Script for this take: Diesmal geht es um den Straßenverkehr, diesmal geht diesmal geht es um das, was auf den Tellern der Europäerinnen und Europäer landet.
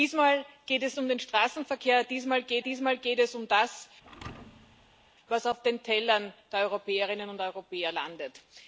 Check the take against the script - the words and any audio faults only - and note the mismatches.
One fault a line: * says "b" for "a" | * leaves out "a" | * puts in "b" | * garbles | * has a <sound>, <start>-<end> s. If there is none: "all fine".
* has a thud, 4.0-5.1 s